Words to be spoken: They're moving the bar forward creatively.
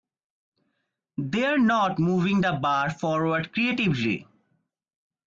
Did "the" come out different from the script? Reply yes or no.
no